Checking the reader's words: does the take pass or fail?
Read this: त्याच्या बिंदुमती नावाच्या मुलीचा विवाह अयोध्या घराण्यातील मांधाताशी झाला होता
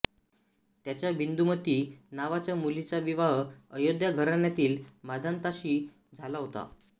pass